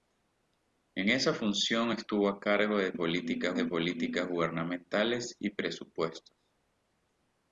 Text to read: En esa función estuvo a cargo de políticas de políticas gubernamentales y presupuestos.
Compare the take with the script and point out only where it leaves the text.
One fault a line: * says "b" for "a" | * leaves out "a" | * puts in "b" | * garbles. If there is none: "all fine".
all fine